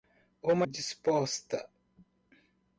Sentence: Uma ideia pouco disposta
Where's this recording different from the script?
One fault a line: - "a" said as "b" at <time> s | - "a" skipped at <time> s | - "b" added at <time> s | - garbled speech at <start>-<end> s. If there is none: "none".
- "ideia pouco" skipped at 0.7 s